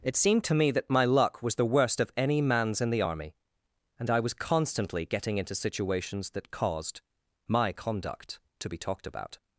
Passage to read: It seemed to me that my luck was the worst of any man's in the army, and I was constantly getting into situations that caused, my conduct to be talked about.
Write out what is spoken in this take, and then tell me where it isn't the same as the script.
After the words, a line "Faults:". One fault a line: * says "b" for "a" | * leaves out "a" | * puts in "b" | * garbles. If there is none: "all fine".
It seemed to me that my luck was the worst of any man's in the army, and I was constantly getting into situations that caused, my conduct to be talked about.
Faults:
all fine